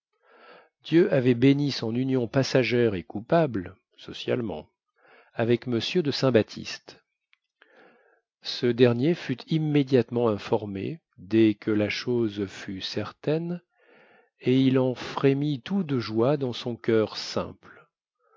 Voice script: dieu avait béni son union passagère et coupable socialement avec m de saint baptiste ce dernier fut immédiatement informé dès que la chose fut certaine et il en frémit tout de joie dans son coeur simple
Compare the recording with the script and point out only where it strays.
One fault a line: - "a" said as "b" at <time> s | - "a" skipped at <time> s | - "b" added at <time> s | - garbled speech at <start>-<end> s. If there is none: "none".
none